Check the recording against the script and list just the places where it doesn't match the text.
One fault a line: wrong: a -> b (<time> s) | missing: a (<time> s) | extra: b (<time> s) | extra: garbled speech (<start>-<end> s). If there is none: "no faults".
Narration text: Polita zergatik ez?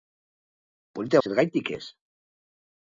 no faults